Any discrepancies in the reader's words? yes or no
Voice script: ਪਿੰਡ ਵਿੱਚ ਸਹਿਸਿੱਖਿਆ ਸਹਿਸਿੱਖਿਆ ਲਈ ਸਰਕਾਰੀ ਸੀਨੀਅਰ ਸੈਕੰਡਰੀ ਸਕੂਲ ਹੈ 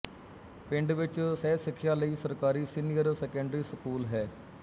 yes